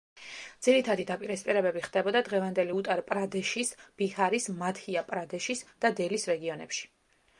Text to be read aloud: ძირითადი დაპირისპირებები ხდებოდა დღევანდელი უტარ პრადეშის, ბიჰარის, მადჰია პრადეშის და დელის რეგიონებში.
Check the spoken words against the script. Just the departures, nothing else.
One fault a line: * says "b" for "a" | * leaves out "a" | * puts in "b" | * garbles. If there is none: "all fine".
all fine